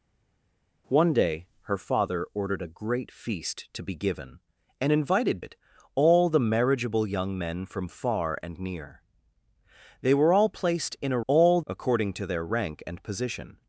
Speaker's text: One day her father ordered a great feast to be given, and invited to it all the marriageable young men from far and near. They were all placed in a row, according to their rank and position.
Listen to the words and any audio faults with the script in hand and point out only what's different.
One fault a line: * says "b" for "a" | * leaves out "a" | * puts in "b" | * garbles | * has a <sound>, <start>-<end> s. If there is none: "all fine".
* leaves out "to"
* says "all" for "row"